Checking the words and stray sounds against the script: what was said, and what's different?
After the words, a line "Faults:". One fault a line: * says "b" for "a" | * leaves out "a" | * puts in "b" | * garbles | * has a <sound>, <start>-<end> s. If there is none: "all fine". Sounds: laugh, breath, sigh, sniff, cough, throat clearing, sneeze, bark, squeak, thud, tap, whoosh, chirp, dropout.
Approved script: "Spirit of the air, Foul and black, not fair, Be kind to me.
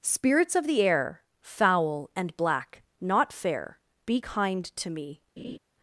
"Spirits of the air, Foul and black, not fair, Be kind to me.
Faults:
* says "Spirits" for "Spirit"
* has a laugh, 5.4-5.6 s